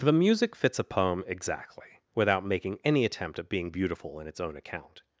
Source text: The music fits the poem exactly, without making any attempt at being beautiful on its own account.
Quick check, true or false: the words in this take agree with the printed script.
false